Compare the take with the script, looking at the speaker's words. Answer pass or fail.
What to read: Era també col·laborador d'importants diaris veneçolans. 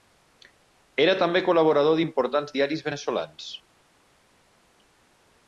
pass